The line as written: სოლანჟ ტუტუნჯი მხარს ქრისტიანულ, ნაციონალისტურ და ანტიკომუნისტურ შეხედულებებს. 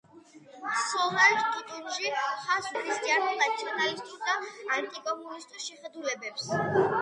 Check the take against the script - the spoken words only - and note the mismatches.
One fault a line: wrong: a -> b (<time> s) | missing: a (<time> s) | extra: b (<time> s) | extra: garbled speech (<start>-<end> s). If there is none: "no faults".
no faults